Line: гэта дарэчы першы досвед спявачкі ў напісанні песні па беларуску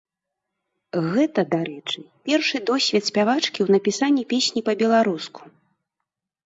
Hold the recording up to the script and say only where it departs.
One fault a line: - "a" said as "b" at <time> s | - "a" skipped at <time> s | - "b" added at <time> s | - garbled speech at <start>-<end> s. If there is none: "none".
none